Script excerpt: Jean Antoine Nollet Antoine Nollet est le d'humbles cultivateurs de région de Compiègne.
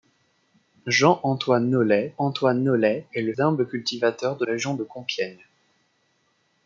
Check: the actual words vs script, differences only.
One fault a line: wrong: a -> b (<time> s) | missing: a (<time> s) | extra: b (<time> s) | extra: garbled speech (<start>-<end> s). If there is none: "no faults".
no faults